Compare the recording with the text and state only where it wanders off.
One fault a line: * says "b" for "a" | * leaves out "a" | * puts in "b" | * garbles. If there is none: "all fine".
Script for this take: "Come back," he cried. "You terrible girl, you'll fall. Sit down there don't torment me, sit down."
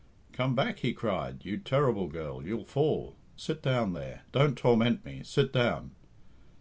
all fine